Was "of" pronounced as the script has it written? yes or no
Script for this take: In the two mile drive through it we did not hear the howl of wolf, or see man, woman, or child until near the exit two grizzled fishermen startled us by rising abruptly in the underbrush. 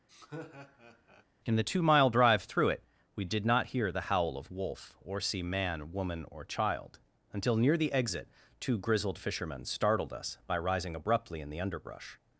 yes